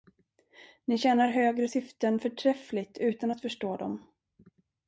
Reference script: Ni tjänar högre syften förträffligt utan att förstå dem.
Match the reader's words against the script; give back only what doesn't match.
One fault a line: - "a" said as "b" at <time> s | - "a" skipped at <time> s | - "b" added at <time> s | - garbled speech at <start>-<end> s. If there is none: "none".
none